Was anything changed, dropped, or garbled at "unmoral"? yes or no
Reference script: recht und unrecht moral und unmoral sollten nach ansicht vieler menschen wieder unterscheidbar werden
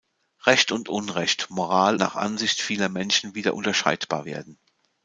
yes